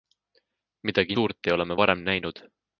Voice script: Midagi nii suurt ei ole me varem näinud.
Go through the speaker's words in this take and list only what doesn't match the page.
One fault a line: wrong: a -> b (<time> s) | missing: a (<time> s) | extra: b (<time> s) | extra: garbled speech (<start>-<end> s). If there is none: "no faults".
missing: nii (1.1 s)